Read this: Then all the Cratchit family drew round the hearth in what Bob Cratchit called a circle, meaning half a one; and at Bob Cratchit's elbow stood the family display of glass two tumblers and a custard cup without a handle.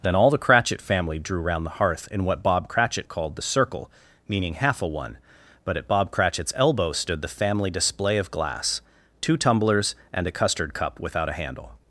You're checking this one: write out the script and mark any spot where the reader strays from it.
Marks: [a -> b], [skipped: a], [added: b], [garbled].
Then all the Cratchit family drew round the hearth in what Bob Cratchit called [a -> the] circle, meaning half a one; [and -> but] at Bob Cratchit's elbow stood the family display of glass two tumblers and a custard cup without a handle.